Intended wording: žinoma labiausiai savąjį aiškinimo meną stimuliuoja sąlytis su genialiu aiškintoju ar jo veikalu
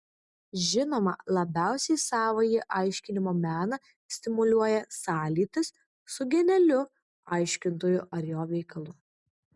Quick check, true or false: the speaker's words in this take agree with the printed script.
true